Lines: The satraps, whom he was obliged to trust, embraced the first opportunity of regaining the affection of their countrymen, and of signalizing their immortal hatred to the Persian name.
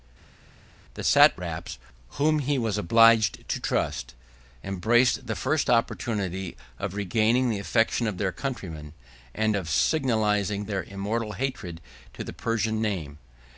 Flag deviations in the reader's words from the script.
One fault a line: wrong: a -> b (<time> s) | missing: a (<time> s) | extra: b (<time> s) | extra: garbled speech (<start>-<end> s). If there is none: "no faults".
no faults